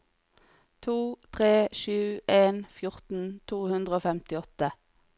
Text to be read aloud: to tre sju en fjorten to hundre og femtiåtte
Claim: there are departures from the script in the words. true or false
false